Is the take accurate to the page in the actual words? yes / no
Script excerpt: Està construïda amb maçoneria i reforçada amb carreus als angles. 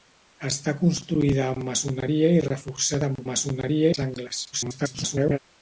no